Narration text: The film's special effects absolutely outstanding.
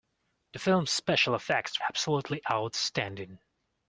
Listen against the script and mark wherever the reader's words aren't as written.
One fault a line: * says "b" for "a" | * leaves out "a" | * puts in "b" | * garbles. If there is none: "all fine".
all fine